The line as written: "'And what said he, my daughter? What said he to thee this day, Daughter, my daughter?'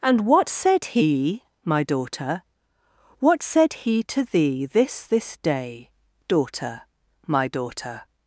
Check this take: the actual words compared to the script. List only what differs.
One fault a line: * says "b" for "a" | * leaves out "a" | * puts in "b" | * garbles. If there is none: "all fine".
* puts in "this"